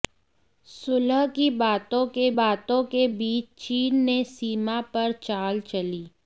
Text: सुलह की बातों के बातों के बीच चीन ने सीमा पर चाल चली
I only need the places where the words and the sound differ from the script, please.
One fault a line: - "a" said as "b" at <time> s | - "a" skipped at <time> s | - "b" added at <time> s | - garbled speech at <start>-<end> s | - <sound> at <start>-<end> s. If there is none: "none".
none